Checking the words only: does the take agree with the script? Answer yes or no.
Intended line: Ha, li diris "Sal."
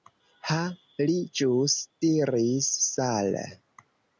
no